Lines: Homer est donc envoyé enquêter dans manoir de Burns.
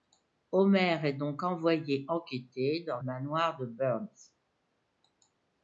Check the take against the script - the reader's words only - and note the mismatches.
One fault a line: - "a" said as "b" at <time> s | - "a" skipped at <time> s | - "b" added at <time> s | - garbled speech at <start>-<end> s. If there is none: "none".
none